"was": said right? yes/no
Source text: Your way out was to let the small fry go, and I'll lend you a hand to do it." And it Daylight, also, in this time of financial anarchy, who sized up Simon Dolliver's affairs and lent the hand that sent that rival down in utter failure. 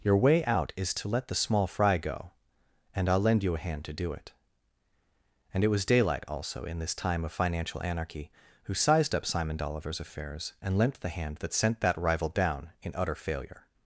no